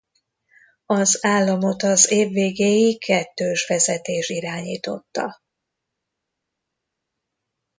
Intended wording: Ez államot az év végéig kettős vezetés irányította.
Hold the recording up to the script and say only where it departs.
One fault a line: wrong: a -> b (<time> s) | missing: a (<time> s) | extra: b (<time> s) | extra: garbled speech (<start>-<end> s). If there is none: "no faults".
wrong: Ez -> Az (0.8 s)